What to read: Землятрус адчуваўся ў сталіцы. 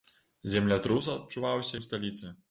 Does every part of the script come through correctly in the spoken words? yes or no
yes